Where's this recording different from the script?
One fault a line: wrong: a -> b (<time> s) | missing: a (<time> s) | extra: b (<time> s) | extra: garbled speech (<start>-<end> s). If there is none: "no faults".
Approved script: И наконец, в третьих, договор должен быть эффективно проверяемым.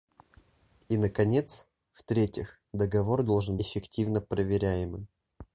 missing: быть (3.6 s)